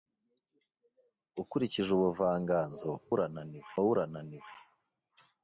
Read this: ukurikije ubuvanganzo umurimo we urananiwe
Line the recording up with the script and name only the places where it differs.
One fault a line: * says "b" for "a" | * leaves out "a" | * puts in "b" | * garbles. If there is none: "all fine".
* says "urananiwe" for "umurimo"